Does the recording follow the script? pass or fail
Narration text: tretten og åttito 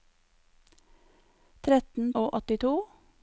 pass